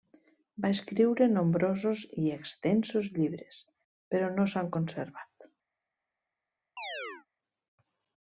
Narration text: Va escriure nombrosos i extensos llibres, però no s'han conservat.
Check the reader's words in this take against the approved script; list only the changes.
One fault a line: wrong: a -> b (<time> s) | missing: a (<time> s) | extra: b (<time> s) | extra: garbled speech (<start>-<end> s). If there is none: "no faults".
no faults